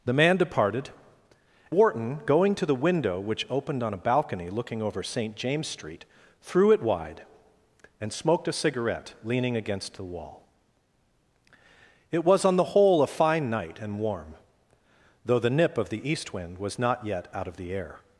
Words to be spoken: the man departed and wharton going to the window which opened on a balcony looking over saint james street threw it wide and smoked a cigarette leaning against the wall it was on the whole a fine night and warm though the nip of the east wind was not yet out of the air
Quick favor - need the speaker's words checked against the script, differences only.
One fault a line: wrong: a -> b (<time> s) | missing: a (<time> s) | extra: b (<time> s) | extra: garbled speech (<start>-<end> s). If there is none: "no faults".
missing: and (0.9 s)